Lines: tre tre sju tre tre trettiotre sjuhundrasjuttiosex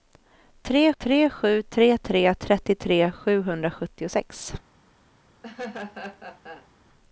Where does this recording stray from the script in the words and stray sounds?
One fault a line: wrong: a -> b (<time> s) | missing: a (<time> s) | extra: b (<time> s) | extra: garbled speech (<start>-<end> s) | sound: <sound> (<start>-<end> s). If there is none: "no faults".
sound: laugh (5.4-6.7 s)